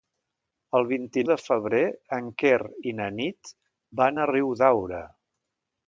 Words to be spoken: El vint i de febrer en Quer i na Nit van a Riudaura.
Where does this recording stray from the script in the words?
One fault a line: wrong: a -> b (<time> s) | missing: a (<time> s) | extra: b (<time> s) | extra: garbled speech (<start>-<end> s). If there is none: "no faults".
no faults